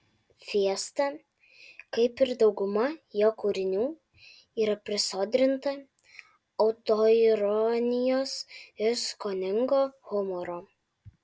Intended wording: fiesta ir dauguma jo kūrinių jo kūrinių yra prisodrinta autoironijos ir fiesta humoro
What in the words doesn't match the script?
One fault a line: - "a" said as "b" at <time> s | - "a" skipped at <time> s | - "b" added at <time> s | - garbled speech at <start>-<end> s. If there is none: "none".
- "kaip" added at 2.0 s
- "jo kūrinių" skipped at 3.9 s
- "fiesta" said as "skoningo" at 9.1 s